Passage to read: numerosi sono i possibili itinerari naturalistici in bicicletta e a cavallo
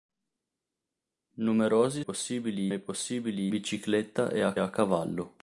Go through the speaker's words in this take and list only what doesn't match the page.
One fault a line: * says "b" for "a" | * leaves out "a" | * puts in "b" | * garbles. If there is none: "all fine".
* says "possibili" for "sono"
* leaves out "itinerari naturalistici in"
* puts in "a"